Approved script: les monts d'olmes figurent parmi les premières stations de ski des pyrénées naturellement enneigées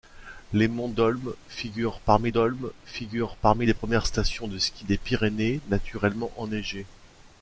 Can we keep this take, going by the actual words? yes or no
no